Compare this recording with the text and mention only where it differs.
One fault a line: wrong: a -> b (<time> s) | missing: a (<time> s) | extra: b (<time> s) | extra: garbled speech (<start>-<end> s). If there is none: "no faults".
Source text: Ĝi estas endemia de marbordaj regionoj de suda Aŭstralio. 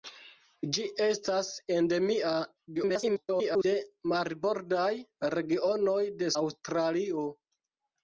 extra: garbled speech (2.7-3.7 s)
missing: suda (6.3 s)